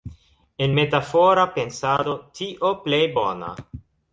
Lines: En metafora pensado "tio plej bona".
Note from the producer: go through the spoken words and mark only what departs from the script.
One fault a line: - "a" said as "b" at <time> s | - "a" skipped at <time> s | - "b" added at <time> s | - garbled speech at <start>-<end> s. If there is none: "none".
none